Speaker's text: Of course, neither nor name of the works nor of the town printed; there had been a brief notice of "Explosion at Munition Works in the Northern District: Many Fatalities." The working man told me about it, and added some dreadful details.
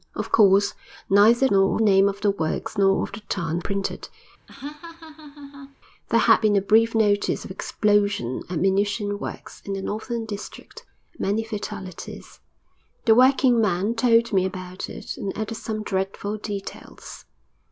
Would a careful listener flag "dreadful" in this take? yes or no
no